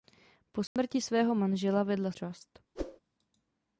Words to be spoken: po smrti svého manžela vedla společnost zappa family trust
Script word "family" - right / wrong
wrong